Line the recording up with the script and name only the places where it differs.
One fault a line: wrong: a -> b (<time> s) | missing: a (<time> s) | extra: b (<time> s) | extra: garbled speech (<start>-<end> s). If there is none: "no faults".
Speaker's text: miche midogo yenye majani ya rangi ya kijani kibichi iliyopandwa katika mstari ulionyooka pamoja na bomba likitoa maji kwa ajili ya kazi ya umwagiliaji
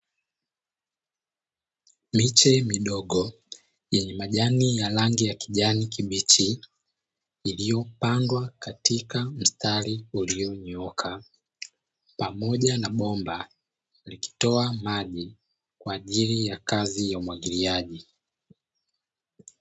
no faults